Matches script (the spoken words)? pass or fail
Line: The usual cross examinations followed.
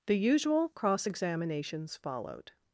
pass